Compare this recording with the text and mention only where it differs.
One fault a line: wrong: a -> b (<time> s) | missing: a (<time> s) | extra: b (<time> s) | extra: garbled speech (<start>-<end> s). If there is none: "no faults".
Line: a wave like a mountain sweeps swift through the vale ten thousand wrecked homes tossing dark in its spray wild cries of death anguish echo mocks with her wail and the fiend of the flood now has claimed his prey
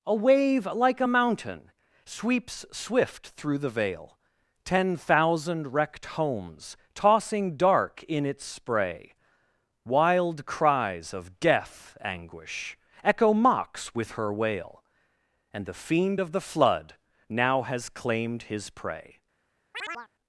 no faults